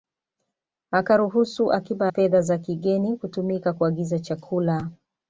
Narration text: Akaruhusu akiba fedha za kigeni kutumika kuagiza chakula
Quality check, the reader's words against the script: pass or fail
pass